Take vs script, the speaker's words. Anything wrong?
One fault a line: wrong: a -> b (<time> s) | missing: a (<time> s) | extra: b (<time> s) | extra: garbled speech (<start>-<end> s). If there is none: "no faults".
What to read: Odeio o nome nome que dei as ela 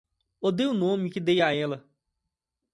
missing: nome (1.1 s)
wrong: as -> a (1.4 s)